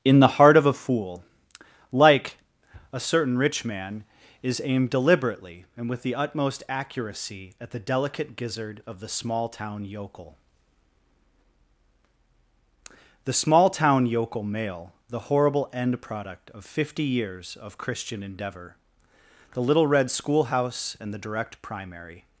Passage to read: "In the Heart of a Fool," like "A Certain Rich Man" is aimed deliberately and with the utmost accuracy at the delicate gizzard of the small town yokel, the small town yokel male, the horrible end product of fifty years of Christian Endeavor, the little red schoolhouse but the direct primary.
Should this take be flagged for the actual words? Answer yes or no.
yes